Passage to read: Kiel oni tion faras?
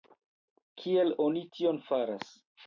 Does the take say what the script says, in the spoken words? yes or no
yes